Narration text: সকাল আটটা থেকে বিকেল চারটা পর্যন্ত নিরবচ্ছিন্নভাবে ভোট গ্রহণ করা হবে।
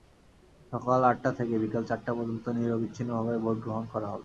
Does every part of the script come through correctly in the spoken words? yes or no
yes